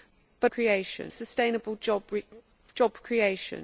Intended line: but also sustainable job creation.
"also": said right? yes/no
no